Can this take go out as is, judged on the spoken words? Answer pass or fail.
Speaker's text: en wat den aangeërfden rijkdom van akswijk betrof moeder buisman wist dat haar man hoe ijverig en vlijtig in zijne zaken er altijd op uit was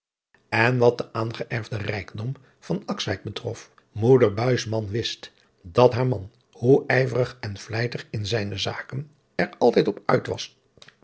pass